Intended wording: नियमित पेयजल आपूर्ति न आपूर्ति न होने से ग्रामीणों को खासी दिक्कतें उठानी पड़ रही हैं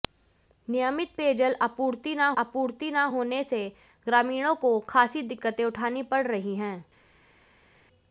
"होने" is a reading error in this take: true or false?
false